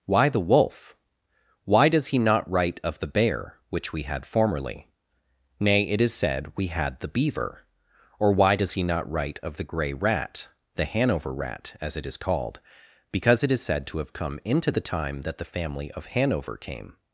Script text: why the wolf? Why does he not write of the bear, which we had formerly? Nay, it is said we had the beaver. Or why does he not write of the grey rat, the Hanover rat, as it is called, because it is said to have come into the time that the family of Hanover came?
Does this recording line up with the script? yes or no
yes